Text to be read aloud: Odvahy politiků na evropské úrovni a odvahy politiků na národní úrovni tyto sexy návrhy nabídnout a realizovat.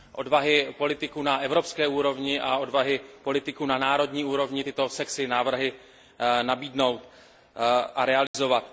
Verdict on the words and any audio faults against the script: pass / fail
fail